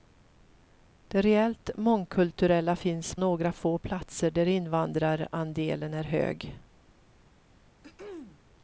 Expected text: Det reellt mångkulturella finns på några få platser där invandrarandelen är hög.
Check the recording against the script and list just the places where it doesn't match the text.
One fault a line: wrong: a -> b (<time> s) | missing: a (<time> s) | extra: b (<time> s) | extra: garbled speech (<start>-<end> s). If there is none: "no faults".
missing: på (3.1 s)